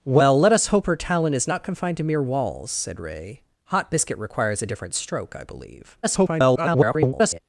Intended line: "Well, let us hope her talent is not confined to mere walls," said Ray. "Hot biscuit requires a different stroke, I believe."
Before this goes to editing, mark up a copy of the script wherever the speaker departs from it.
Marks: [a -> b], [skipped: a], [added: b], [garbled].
"Well, let us hope her talent is not confined to mere walls," said Ray. "Hot biscuit requires a different stroke, I believe." [garbled]